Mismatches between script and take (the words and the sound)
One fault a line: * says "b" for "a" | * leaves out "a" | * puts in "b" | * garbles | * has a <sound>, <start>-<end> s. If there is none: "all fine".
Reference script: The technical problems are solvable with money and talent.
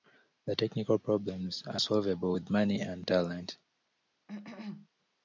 * has a cough, 4.3-4.9 s